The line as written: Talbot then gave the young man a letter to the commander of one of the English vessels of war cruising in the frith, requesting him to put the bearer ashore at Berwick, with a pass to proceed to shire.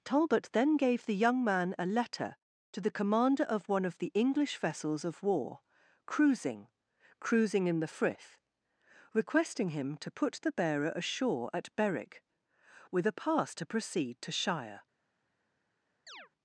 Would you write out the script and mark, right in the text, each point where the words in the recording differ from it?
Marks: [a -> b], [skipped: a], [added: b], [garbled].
Talbot then gave the young man a letter to the commander of one of the English vessels of war cruising [added: cruising] in the frith, requesting him to put the bearer ashore at Berwick, with a pass to proceed to shire.